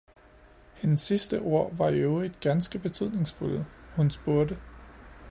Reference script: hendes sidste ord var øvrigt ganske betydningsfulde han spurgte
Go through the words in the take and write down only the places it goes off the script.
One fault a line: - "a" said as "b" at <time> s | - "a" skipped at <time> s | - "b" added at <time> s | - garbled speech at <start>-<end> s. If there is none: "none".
- "i" added at 1.9 s
- "han" said as "hun" at 3.9 s